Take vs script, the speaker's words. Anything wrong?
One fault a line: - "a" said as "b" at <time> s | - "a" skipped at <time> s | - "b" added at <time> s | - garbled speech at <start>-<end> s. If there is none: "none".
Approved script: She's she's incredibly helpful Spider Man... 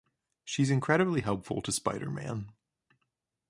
- "she's" skipped at 0.7 s
- "to" added at 1.6 s